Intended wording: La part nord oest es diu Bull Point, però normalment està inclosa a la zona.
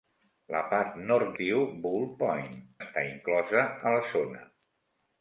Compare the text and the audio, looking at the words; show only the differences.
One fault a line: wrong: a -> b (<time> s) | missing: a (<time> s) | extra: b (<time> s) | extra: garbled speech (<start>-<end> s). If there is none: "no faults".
missing: oest es (1.4 s)
missing: però normalment (2.5 s)